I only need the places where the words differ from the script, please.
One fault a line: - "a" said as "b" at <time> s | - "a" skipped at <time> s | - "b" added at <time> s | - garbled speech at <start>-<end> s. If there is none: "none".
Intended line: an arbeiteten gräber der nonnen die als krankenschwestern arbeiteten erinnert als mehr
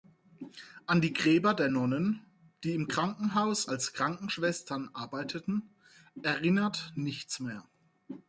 - "arbeiteten" said as "die" at 1.0 s
- "im krankenhaus" added at 2.7 s
- "als" said as "nichts" at 7.0 s